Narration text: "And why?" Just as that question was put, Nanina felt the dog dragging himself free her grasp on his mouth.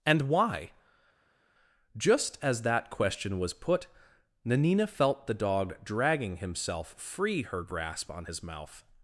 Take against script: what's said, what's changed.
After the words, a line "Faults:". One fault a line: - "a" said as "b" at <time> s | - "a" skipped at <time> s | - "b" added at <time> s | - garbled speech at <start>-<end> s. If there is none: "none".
"And why?" Just as that question was put, Nanina felt the dog dragging himself free her grasp on his mouth.
Faults:
none